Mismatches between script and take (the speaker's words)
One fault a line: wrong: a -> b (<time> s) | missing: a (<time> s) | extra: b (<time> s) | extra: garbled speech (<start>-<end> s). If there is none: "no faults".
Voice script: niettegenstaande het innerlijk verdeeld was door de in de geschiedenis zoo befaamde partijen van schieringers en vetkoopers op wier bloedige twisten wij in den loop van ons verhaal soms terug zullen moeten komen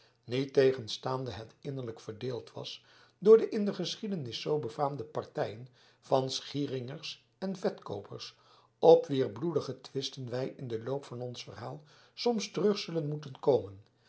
no faults